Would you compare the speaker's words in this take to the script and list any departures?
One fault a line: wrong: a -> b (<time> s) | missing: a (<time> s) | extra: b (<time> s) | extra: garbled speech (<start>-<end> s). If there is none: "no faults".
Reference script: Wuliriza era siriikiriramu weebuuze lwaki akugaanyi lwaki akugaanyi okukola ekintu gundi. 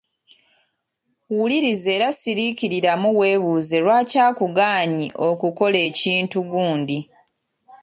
missing: lwaki akugaanyi (5.1 s)